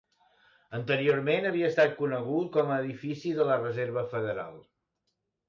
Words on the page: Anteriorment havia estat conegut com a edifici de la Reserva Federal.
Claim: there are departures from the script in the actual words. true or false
false